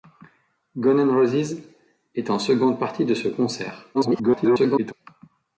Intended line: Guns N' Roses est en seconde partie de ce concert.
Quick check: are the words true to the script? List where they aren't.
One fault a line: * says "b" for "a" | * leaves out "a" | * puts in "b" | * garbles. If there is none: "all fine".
* garbles